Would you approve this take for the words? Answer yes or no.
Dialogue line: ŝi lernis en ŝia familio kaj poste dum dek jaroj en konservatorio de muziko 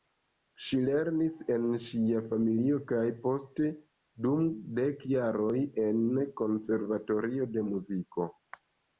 yes